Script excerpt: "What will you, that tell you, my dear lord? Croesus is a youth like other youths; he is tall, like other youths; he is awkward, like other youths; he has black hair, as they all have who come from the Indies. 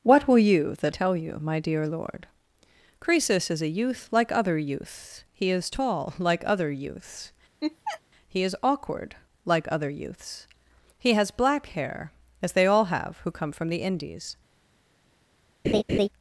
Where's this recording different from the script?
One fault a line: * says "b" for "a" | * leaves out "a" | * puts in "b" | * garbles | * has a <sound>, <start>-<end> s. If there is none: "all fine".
* has a laugh, 7.6-8.0 s
* has a laugh, 15.6-16.1 s